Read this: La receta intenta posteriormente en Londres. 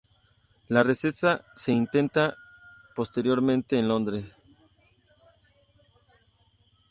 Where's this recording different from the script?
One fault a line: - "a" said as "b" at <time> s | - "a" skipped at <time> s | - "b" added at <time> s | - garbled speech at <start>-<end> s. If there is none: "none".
- "se" added at 1.6 s